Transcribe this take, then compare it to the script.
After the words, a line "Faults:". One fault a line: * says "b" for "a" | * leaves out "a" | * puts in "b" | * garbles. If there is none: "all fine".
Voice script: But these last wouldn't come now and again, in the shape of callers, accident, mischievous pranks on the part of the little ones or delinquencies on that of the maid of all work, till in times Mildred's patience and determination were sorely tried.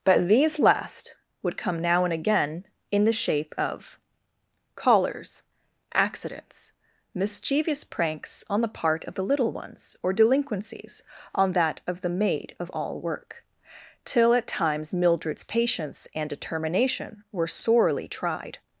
But these last would come now and again, in the shape of callers, accidents, mischievous pranks on the part of the little ones or delinquencies on that of the maid of all work, till at times Mildred's patience and determination were sorely tried.
Faults:
* says "would" for "wouldn't"
* says "accidents" for "accident"
* says "at" for "in"